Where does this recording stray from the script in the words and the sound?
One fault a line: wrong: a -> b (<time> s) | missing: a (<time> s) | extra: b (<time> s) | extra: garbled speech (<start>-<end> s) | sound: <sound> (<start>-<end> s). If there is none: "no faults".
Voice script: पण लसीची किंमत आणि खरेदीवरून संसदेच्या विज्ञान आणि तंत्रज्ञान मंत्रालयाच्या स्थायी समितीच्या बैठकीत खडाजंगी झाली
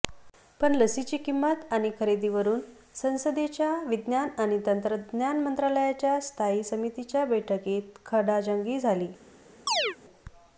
sound: chirp (9.7-10.0 s)